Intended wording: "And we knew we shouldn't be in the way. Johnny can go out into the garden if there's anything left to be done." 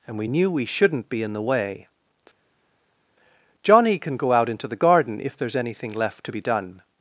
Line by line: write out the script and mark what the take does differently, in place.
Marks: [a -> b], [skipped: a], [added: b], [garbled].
"And we knew we shouldn't be in the way. Johnny can go out into the garden if there's anything left to be done."